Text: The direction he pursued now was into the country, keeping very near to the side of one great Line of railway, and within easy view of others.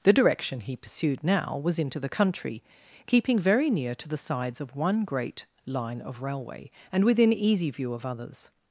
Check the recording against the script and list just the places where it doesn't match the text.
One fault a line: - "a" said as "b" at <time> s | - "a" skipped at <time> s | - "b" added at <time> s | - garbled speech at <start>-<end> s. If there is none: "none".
- "side" said as "sides" at 4.2 s